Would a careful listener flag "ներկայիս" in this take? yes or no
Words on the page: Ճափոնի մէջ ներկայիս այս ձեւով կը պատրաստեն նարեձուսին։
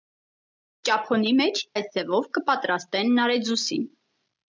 yes